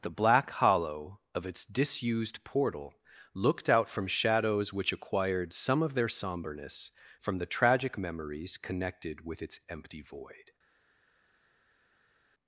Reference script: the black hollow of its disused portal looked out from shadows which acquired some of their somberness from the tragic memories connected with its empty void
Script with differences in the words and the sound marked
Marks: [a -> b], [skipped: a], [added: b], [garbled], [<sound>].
the black hollow of its disused portal looked out from shadows which acquired some of their somberness from the tragic memories connected with its empty void